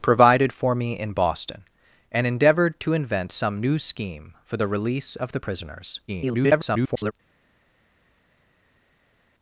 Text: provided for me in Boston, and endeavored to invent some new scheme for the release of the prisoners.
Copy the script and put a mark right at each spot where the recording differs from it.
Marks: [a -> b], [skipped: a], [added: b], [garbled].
provided for me in Boston, and endeavored to invent some new scheme for the release of the prisoners. [garbled]